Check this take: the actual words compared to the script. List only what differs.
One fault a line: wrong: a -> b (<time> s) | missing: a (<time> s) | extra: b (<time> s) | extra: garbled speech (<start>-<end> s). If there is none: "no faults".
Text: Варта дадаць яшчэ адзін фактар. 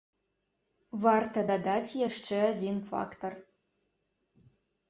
no faults